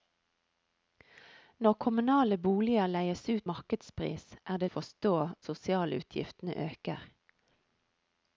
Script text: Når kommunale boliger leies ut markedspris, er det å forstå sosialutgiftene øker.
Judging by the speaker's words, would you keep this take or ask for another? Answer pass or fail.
pass